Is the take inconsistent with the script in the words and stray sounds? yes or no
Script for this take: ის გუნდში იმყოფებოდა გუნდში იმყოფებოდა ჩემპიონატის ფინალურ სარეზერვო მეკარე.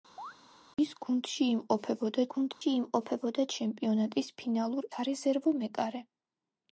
yes